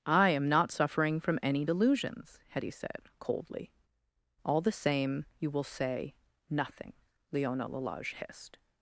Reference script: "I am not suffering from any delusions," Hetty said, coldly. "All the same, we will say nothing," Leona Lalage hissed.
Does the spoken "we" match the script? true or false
false